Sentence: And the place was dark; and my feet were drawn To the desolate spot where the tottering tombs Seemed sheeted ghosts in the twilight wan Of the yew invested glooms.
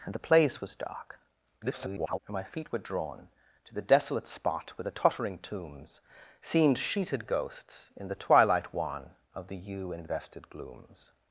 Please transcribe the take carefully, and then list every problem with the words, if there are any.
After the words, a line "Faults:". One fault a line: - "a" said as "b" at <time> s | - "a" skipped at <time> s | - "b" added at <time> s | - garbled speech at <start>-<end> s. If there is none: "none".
And the place was dark; [garbled] and my feet were drawn To the desolate spot where the tottering tombs Seemed sheeted ghosts in the twilight wan Of the yew invested glooms.
Faults:
- garbled speech at 1.6-2.2 s